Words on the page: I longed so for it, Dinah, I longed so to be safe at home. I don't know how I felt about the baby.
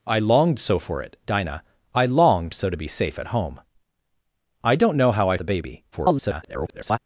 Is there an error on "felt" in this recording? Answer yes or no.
yes